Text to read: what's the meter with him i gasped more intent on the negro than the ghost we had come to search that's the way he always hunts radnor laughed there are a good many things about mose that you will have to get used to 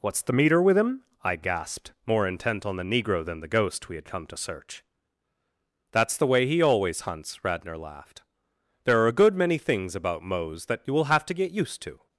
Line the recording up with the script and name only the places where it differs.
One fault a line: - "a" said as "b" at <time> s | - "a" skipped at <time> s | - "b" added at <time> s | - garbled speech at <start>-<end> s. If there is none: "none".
none